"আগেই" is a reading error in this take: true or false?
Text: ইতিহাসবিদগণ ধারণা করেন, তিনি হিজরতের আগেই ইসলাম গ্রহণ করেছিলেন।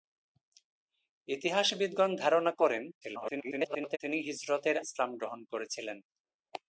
true